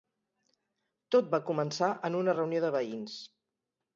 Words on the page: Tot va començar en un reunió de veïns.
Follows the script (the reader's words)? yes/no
no